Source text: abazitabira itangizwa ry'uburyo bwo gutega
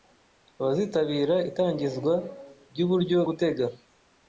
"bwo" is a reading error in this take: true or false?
true